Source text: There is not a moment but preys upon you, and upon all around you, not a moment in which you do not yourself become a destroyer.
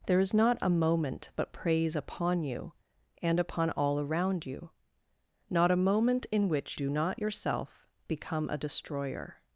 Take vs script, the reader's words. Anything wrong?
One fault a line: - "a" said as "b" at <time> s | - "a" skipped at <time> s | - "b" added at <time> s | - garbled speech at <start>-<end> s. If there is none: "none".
- "you" skipped at 6.8 s